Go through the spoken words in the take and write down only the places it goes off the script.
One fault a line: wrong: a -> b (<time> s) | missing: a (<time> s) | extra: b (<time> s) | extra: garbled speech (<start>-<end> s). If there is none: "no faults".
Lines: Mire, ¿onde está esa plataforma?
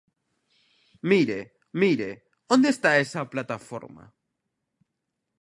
extra: mire (1.7 s)